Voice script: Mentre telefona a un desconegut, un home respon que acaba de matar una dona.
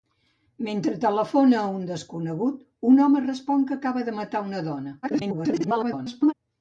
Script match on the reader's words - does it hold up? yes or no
no